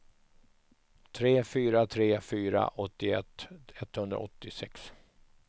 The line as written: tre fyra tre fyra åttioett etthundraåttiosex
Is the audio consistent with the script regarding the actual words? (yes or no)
yes